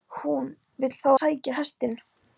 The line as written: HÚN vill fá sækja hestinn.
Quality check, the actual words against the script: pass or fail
pass